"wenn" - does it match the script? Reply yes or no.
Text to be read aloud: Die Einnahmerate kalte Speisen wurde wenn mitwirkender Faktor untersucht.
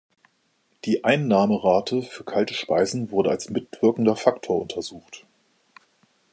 no